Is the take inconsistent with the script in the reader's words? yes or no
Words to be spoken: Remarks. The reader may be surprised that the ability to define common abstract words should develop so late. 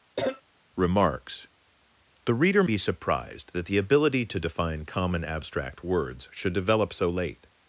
yes